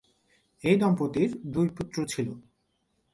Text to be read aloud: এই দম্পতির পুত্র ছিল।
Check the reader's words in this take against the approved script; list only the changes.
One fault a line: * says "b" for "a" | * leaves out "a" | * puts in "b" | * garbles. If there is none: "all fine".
* puts in "দুই"